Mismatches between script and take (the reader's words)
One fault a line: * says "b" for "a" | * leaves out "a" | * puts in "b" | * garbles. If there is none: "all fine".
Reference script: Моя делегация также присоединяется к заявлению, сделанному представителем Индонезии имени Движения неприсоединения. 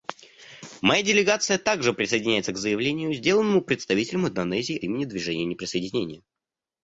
all fine